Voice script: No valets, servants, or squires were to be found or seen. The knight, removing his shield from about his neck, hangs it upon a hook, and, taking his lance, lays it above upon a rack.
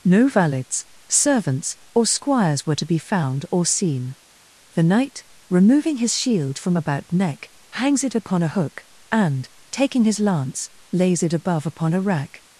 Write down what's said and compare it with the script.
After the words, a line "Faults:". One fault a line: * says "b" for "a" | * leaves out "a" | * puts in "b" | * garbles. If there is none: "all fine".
No valets, servants, or squires were to be found or seen. The knight, removing his shield from about neck, hangs it upon a hook, and, taking his lance, lays it above upon a rack.
Faults:
* leaves out "his"